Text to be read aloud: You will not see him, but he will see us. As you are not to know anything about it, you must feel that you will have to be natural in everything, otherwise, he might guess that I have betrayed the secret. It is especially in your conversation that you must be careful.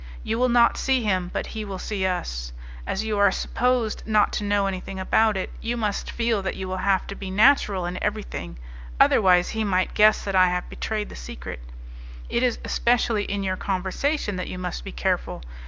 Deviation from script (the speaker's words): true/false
true